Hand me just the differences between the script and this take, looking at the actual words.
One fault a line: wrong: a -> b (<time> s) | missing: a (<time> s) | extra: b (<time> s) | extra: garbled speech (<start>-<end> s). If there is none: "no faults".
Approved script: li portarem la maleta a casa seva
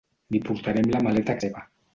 missing: casa (1.4 s)